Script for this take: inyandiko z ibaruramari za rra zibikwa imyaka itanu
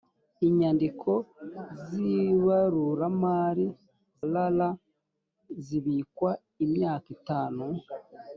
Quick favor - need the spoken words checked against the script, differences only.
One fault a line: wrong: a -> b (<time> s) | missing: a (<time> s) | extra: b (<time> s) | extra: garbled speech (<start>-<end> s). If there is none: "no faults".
missing: za (3.7 s)